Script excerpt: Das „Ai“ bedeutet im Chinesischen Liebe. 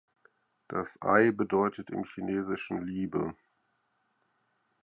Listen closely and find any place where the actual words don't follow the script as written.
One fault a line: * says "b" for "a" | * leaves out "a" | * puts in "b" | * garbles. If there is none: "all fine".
all fine